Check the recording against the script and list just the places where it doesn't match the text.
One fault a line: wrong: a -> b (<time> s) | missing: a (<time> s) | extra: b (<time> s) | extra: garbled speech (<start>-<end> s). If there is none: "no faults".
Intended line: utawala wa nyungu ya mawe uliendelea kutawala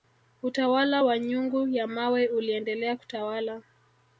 no faults